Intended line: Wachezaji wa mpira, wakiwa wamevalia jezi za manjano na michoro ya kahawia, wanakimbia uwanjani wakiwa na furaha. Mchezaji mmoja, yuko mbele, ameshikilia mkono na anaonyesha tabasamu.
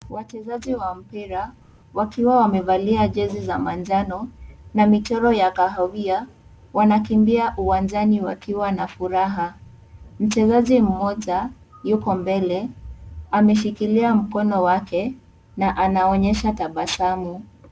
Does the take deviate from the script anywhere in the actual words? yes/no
yes